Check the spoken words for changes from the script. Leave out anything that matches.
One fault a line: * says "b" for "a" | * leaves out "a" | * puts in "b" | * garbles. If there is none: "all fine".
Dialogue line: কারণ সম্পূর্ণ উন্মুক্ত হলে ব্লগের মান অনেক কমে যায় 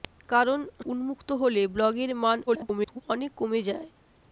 * leaves out "সম্পূর্ণ"
* garbles